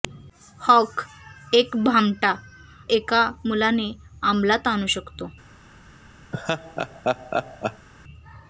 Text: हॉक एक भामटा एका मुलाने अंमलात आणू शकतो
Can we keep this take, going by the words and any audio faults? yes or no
no